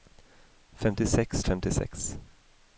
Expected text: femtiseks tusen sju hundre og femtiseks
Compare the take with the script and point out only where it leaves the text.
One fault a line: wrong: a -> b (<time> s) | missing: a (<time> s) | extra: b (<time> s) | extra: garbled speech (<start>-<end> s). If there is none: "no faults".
missing: tusen sju hundre (1.4 s)